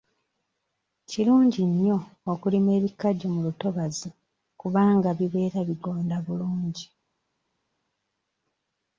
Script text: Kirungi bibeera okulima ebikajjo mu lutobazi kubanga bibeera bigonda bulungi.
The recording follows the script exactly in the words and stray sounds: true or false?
false